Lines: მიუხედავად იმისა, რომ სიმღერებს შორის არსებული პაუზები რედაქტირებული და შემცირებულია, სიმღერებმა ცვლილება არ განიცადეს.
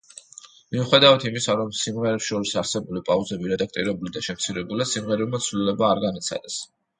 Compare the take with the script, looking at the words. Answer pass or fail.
pass